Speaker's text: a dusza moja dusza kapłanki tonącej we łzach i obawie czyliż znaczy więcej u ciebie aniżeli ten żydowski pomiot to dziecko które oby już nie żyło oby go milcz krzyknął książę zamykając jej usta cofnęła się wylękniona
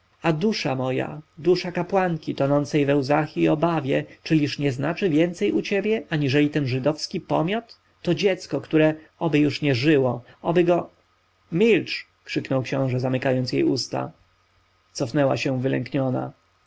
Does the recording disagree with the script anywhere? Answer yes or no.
yes